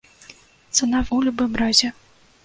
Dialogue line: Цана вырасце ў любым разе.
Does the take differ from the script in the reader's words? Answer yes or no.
yes